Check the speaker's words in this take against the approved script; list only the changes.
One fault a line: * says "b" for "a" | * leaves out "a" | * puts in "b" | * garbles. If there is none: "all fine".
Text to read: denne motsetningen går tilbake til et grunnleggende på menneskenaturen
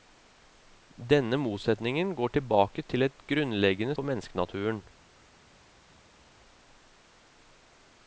all fine